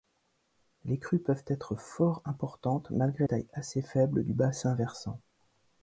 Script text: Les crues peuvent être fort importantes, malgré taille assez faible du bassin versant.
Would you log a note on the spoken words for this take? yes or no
no